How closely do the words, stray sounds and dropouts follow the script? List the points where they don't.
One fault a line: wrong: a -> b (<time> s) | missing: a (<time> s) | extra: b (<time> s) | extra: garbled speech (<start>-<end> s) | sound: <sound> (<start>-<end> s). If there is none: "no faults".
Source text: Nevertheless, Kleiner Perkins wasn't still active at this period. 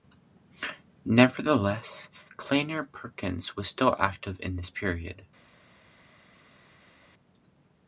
wrong: wasn't -> was (3.5 s)
wrong: at -> in (4.4 s)